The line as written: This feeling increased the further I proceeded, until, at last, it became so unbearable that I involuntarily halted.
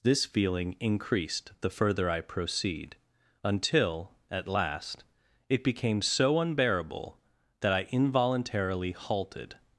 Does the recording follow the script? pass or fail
fail